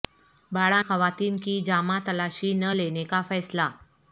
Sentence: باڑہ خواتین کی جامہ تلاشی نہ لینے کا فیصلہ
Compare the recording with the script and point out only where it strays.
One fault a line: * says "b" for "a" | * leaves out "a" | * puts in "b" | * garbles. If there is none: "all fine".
all fine